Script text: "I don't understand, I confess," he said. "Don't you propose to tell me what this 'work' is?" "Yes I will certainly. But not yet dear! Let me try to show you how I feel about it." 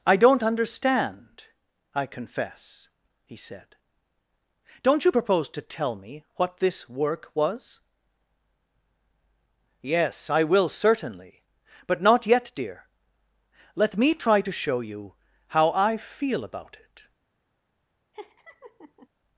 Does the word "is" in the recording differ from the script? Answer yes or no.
yes